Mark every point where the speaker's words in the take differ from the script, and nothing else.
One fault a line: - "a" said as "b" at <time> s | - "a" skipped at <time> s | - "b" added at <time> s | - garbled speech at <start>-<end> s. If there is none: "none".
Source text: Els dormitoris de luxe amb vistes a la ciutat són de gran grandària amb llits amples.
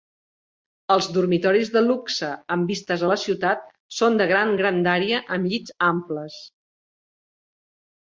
none